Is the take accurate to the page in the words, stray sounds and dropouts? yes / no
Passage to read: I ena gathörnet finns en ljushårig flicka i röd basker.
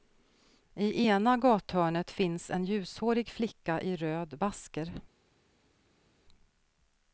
yes